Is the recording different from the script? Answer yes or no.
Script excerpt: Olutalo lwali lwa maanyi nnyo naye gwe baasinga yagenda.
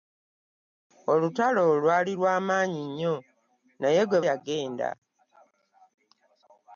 yes